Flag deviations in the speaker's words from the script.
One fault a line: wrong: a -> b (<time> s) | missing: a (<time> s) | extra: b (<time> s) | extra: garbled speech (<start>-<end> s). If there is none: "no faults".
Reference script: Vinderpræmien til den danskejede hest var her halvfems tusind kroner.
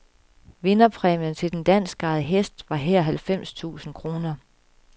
no faults